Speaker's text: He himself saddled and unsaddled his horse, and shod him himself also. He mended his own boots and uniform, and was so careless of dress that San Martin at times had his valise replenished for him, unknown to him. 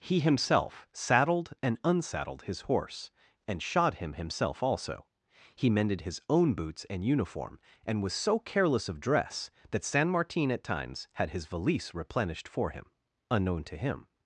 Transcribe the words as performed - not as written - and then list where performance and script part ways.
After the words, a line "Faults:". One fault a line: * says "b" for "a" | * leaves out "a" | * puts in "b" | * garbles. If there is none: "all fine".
He himself saddled and unsaddled his horse, and shod him himself also. He mended his own boots and uniform, and was so careless of dress that San Martin at times had his valise replenished for him, unknown to him.
Faults:
all fine